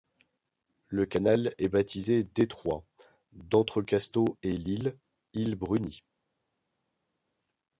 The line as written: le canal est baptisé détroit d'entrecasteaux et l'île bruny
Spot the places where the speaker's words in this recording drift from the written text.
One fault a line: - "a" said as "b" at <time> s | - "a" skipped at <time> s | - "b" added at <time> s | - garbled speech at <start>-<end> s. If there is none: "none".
- "île" added at 5.3 s